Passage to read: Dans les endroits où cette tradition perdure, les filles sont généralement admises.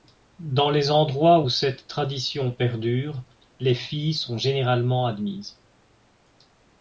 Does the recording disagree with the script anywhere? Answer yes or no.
no